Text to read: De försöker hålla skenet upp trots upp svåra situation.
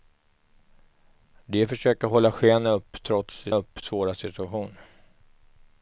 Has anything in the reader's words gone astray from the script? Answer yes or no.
no